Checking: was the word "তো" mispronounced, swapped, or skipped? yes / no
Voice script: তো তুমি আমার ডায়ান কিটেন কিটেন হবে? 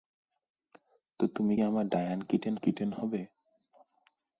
no